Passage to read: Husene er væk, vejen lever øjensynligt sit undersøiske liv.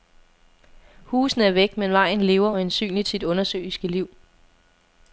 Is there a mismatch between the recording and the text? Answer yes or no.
yes